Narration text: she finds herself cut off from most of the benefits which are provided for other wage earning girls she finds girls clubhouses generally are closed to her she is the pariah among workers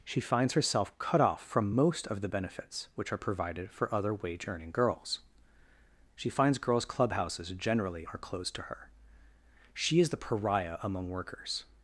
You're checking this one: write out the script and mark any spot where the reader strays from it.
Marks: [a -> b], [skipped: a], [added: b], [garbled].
she finds herself cut off from most of the benefits which are provided for other wage earning girls she finds girls clubhouses generally are closed to her she is the pariah among workers